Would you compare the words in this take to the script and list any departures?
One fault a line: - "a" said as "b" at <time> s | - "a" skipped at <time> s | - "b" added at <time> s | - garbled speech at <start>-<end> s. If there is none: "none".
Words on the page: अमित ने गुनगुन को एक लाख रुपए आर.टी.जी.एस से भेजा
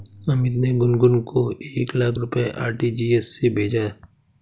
none